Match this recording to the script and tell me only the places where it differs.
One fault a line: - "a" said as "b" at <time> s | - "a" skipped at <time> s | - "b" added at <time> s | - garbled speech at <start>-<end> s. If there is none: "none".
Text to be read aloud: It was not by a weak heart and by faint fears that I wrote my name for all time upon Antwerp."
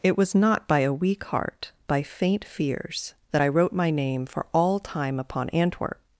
- "and" skipped at 1.7 s